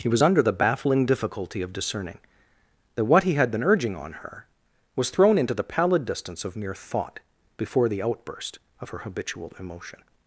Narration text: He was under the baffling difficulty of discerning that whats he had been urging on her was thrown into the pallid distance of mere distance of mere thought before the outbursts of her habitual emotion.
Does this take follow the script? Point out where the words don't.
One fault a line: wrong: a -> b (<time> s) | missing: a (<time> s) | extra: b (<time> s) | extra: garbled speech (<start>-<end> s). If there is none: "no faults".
wrong: whats -> what (3.0 s)
missing: distance of mere (6.8 s)
wrong: outbursts -> outburst (8.0 s)